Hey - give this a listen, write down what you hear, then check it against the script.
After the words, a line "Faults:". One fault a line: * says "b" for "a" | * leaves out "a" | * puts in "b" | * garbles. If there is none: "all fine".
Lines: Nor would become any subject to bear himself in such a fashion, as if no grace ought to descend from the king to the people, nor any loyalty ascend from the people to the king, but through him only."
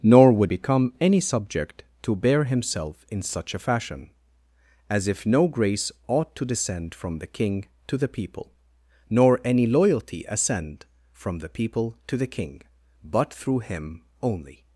Nor would become any subject to bear himself in such a fashion, as if no grace ought to descend from the king to the people, nor any loyalty ascend from the people to the king, but through him only."
Faults:
all fine